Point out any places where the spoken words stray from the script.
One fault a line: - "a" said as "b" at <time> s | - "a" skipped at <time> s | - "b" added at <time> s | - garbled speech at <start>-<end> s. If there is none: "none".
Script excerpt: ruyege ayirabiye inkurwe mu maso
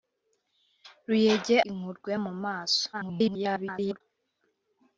- "ayirabiye" skipped at 1.6 s
- garbled speech at 2.9-4.0 s